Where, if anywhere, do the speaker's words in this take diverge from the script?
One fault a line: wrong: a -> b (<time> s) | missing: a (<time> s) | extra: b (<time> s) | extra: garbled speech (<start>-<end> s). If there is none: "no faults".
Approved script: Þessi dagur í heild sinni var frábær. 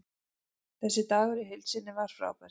no faults